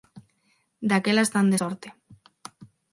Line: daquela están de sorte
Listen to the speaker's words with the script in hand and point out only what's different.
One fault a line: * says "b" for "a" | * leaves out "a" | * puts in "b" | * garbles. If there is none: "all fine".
all fine